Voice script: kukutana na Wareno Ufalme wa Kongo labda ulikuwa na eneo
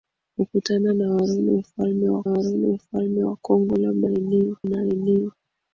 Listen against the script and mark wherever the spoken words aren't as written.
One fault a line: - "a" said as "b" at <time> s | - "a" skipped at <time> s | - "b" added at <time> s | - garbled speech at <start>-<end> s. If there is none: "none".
- "Wareno Ufalme wa" added at 2.3 s
- "ulikuwa" said as "eneo" at 4.1 s